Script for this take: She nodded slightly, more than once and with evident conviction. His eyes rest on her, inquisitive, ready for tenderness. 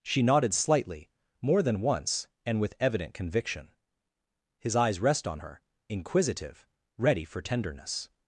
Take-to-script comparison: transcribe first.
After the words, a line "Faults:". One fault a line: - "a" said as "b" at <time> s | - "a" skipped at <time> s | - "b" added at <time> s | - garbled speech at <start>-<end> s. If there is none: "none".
She nodded slightly, more than once and with evident conviction. His eyes rest on her, inquisitive, ready for tenderness.
Faults:
none